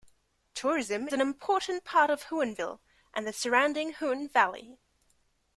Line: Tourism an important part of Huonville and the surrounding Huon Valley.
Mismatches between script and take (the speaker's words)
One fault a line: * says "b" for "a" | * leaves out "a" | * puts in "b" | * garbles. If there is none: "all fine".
all fine